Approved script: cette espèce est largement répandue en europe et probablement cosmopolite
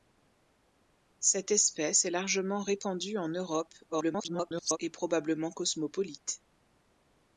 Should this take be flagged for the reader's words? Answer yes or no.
yes